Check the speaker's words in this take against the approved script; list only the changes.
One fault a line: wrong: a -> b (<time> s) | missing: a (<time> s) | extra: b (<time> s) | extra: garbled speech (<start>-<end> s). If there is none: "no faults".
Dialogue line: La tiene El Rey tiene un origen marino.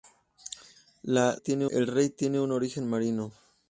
no faults